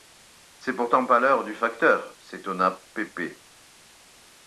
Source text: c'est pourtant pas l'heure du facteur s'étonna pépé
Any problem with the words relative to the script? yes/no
no